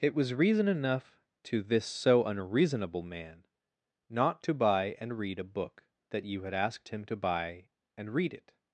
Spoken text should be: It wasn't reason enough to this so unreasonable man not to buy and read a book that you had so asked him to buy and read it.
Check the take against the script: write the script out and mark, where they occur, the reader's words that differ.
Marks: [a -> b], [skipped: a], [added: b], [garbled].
It [wasn't -> was] reason enough to this so unreasonable man not to buy and read a book that you had [skipped: so] asked him to buy and read it.